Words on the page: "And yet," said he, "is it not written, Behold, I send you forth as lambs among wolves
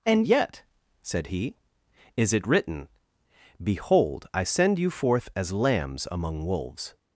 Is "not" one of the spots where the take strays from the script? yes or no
yes